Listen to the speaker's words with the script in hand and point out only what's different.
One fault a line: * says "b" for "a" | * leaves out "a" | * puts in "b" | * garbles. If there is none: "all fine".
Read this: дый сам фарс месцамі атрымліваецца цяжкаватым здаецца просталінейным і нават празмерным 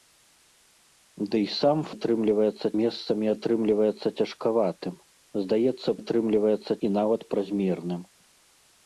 * says "атрымліваецца" for "фарс"
* says "атрымліваецца" for "просталінейным"